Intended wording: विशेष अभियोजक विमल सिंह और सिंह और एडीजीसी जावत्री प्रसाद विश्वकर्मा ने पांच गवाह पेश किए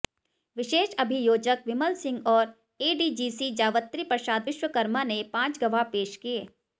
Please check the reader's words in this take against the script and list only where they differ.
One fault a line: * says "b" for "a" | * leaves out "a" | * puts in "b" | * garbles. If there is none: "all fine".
* leaves out "सिंह और"